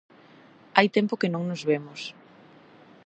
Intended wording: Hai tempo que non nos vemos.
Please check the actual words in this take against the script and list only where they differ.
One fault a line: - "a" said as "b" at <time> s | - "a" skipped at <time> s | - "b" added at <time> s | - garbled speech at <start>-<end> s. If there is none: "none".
none